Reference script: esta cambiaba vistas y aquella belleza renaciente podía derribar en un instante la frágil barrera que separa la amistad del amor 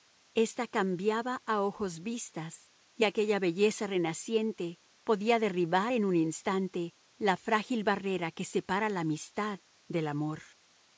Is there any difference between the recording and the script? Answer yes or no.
yes